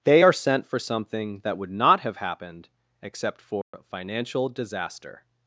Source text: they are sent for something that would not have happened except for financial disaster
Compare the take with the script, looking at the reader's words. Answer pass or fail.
pass